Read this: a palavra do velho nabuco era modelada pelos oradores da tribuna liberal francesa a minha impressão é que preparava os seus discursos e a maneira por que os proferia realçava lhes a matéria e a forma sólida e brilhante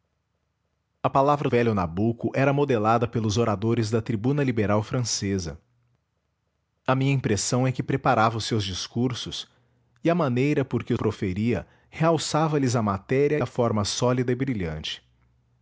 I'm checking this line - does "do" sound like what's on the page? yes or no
no